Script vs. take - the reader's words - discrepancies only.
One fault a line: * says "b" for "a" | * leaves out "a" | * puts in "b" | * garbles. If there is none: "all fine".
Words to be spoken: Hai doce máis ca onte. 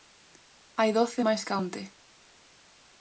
all fine